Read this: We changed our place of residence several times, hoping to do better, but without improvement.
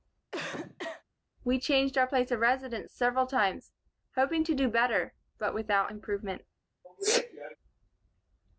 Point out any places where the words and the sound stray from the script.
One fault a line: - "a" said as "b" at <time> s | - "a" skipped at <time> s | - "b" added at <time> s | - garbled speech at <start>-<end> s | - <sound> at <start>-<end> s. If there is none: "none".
- cough at 0.3-1.0 s
- sneeze at 6.8-7.6 s